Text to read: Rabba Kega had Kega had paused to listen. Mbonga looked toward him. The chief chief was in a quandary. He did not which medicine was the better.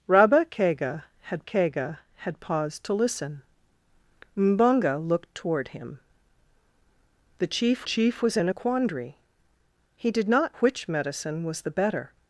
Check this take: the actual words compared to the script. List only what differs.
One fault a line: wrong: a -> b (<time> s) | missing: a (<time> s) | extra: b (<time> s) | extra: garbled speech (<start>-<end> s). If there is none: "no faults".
no faults